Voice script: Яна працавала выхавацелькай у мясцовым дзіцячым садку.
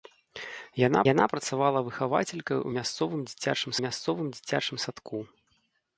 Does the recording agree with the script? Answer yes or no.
no